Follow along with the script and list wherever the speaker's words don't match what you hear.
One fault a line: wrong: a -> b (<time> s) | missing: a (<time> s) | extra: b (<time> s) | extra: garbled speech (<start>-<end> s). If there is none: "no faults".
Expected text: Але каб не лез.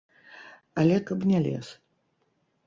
no faults